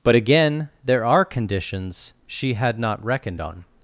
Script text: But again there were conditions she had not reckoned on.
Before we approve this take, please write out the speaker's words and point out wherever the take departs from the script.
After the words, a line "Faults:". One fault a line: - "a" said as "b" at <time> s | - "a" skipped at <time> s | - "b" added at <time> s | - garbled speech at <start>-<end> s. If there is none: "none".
But again there are conditions she had not reckoned on.
Faults:
- "were" said as "are" at 1.1 s